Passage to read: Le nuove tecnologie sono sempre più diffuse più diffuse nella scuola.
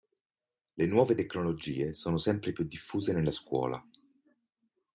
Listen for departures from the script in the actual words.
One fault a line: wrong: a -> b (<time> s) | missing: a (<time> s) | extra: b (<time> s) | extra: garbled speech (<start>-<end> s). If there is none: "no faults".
missing: più diffuse (3.1 s)